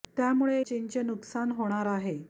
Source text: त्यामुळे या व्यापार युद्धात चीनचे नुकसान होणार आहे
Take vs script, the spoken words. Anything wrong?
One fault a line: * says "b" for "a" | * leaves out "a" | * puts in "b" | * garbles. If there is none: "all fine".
* leaves out "या व्यापार युद्धात"